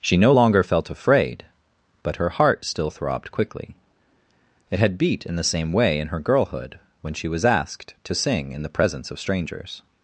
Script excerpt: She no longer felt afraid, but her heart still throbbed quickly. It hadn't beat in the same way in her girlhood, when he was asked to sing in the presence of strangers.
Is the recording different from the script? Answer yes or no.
yes